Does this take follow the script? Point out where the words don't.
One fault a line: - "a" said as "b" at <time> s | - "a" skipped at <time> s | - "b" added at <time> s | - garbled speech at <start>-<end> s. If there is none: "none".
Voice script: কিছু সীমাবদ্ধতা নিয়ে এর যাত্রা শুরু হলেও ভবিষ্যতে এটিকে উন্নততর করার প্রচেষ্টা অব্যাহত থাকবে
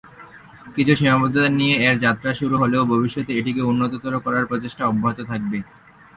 none